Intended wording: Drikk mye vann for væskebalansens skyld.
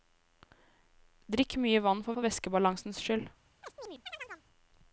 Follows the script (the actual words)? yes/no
no